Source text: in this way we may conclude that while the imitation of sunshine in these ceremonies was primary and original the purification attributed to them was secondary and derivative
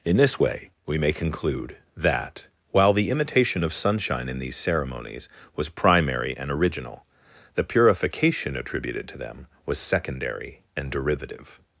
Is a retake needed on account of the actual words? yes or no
no